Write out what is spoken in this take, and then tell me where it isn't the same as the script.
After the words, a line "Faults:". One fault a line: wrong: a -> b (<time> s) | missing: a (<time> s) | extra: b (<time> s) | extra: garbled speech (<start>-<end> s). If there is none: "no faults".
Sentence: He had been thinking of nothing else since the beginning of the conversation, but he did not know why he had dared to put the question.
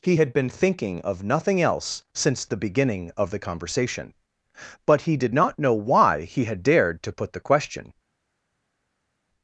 He had been thinking of nothing else since the beginning of the conversation, but he did not know why he had dared to put the question.
Faults:
no faults